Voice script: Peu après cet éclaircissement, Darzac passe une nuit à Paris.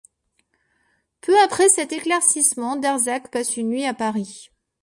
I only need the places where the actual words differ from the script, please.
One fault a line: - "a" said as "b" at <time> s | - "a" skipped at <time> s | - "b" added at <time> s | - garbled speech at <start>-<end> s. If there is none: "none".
none